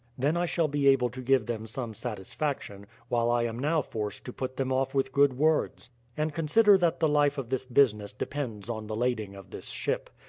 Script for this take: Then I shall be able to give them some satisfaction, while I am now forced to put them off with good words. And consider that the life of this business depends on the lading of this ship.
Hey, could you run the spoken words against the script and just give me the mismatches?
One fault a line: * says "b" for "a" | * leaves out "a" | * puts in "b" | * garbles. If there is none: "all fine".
all fine